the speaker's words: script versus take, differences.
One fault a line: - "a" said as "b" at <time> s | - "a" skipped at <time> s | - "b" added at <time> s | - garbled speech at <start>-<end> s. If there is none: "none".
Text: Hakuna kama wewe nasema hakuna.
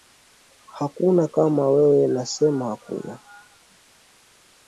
none